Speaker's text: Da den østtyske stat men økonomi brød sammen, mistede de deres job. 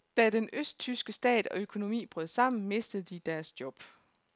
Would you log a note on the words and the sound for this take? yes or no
yes